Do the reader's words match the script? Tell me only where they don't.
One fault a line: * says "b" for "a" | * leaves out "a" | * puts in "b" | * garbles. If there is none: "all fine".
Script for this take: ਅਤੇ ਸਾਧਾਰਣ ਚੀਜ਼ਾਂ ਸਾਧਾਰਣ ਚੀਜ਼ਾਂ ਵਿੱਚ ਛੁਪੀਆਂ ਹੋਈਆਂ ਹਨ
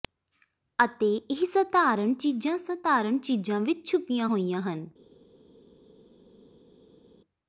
* puts in "ਇਹ"